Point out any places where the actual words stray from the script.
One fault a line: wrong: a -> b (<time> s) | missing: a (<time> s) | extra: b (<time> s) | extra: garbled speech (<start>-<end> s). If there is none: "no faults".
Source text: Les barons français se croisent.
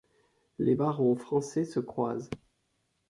no faults